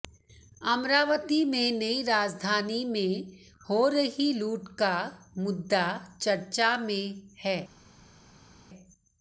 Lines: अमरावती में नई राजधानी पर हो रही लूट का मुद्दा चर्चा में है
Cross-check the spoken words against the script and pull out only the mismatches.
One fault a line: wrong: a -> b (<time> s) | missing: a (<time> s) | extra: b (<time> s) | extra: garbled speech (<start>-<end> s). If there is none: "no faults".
wrong: पर -> में (2.9 s)